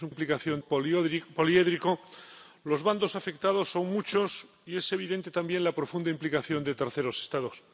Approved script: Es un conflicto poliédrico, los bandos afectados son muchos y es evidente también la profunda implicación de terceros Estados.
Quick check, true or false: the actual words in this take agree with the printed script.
false